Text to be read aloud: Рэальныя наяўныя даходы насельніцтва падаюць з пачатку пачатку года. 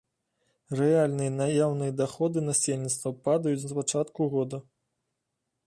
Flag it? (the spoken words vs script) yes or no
yes